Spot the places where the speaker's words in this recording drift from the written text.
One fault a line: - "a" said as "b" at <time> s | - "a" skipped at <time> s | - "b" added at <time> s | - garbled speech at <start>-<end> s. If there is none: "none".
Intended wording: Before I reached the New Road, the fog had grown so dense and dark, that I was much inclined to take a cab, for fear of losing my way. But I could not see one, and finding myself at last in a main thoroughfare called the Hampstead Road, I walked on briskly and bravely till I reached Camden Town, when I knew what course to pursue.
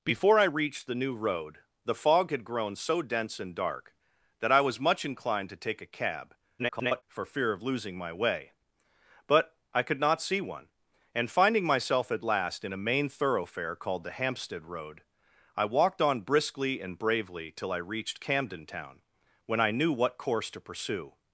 - garbled speech at 6.6-7.0 s